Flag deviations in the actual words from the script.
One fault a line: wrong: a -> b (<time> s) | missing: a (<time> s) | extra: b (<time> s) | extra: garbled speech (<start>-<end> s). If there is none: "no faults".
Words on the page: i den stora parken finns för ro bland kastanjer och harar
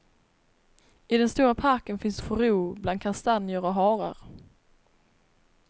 no faults